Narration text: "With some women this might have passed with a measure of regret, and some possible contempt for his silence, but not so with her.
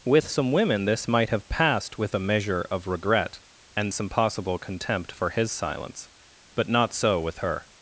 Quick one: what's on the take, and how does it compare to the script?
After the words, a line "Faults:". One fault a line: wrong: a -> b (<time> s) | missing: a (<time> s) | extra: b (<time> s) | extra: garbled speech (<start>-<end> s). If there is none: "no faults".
"With some women this might have passed with a measure of regret, and some possible contempt for his silence, but not so with her.
Faults:
no faults